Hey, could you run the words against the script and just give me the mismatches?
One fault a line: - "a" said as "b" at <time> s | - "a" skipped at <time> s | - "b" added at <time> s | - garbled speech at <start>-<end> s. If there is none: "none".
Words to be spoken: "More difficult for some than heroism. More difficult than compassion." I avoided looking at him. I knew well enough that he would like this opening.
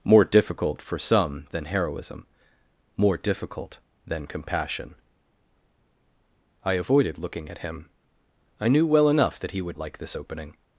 none